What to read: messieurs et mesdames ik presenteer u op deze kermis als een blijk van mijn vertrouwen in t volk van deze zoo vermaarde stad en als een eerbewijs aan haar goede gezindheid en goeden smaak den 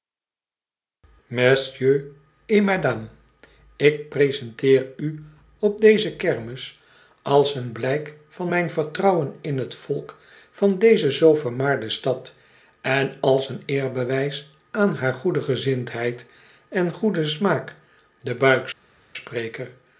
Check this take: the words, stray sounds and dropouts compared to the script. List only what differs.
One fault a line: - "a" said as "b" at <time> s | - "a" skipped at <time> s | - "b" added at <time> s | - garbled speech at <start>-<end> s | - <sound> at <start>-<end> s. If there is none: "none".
none